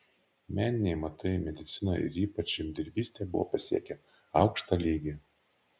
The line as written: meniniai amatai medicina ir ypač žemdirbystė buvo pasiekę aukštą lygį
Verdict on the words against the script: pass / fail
pass